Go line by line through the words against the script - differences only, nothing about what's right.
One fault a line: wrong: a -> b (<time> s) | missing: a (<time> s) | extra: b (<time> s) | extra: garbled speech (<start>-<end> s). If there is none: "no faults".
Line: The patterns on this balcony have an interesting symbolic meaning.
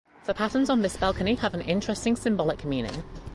no faults